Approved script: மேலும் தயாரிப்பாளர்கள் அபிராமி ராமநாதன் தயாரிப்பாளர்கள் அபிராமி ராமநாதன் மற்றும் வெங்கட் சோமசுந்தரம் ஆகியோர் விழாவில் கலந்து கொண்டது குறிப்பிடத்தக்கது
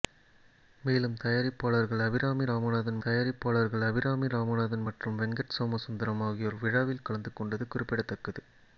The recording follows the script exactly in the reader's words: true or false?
true